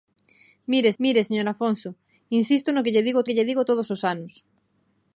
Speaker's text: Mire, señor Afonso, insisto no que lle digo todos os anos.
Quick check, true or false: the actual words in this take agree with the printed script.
false